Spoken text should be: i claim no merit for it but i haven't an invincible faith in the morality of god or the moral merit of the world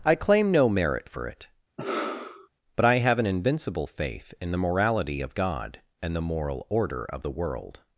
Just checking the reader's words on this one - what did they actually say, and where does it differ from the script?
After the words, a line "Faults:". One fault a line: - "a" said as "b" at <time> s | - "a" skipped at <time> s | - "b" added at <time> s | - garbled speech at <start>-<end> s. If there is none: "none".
i claim no merit for it but i have an invincible faith in the morality of god and the moral order of the world
Faults:
- "haven't" said as "have" at 3.0 s
- "or" said as "and" at 6.0 s
- "merit" said as "order" at 6.7 s